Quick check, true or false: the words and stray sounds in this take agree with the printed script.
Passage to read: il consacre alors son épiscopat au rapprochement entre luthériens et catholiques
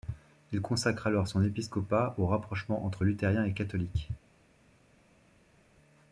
true